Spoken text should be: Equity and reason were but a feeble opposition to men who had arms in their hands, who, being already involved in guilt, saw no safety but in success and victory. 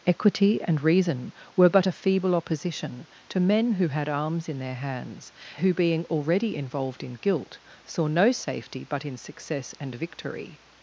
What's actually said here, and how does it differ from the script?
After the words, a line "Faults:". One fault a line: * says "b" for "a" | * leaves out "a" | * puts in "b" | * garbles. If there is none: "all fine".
Equity and reason were but a feeble opposition to men who had arms in their hands, who, being already involved in guilt, saw no safety but in success and victory.
Faults:
all fine